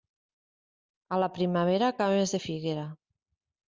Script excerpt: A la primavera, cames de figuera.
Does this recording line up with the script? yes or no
yes